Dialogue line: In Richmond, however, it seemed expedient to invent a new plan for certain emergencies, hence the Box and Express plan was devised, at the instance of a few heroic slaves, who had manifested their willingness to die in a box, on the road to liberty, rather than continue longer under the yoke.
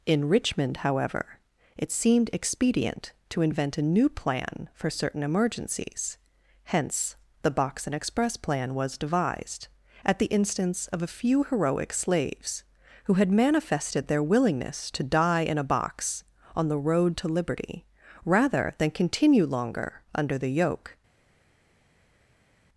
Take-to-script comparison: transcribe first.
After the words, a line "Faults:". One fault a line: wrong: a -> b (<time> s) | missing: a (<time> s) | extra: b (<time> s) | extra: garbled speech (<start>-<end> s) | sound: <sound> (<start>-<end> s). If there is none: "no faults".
In Richmond, however, it seemed expedient to invent a new plan for certain emergencies, hence the Box and Express plan was devised, at the instance of a few heroic slaves, who had manifested their willingness to die in a box, on the road to liberty, rather than continue longer under the yoke.
Faults:
no faults